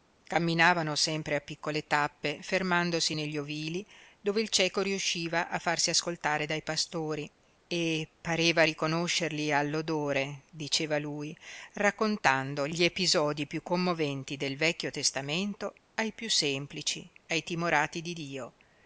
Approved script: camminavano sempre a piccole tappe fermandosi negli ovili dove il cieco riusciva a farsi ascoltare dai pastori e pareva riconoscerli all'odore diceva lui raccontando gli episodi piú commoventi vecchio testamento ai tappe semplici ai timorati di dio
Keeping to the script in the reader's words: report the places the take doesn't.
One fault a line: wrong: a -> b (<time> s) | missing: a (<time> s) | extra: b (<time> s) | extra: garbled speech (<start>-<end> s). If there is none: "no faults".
extra: del (14.4 s)
wrong: tappe -> piú (16.1 s)